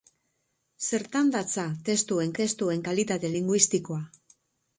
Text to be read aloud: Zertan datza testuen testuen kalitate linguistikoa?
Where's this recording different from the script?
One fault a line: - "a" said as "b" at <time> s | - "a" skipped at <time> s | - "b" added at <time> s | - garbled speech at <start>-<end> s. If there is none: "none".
none